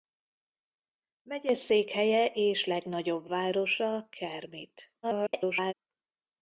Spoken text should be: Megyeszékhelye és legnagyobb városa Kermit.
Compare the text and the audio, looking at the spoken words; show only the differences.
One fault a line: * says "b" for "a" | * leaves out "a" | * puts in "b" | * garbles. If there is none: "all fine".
* garbles